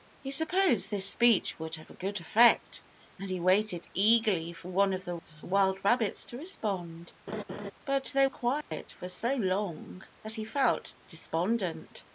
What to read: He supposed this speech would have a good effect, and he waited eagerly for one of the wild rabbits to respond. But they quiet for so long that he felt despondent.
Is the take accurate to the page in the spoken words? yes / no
yes